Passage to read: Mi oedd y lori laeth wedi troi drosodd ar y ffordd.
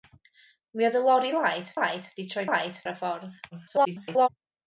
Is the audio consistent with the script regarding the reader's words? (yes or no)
no